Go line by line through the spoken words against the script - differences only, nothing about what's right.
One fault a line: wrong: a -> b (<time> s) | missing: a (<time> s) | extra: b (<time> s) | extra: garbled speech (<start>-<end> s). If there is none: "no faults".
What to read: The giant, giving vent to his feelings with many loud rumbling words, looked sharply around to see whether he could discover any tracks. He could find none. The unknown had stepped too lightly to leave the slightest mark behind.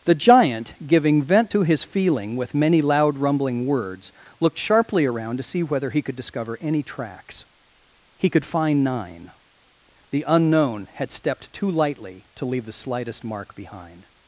wrong: feelings -> feeling (1.8 s)
wrong: none -> nine (8.8 s)